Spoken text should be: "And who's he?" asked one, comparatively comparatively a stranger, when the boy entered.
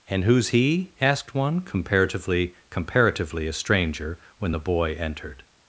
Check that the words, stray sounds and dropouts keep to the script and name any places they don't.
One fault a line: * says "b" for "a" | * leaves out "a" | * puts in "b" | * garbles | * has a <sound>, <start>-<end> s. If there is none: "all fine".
all fine